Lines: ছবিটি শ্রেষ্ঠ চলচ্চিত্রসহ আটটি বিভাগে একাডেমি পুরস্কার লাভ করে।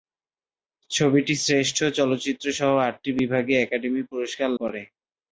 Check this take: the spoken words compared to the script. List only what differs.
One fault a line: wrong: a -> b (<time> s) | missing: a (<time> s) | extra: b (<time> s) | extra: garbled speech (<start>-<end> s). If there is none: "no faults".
missing: লাভ (4.5 s)